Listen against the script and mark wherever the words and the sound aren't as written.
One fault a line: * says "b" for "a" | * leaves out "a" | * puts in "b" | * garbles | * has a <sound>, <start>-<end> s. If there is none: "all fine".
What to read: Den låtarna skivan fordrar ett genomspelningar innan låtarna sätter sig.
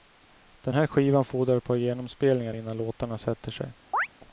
* says "här" for "låtarna"
* puts in "par"
* has a chirp, 3.9-4.1 s